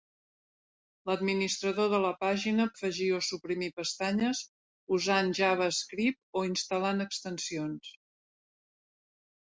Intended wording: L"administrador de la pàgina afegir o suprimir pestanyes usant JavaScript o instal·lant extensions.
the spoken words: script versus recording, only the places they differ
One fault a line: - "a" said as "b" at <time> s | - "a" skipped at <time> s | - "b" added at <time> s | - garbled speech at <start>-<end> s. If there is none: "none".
none